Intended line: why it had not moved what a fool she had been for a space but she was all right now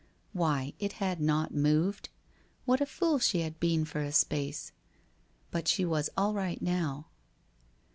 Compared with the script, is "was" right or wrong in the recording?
right